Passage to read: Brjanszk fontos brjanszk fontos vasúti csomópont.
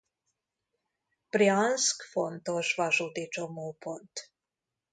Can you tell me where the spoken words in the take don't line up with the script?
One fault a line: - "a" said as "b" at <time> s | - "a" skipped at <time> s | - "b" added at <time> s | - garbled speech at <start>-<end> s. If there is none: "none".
- "brjanszk fontos" skipped at 2.7 s